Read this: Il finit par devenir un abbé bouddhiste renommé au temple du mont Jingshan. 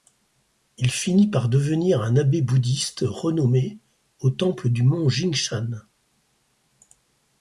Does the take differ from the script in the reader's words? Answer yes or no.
no